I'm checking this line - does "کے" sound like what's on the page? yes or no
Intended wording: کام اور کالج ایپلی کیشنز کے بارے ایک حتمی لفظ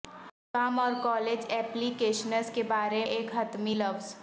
yes